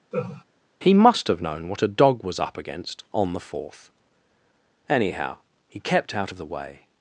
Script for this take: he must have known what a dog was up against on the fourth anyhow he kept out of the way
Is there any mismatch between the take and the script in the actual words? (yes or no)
no